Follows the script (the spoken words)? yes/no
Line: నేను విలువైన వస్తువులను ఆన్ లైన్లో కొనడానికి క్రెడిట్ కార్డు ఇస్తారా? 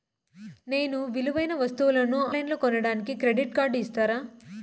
no